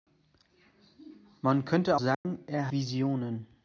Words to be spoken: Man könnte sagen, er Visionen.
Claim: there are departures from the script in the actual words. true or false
false